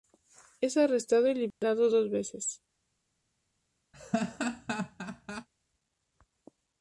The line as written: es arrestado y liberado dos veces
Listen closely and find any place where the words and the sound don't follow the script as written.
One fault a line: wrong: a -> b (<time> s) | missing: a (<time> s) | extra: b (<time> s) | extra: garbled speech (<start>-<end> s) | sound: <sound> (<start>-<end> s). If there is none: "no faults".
sound: dropout (1.5-1.6 s)
sound: laugh (3.9-5.5 s)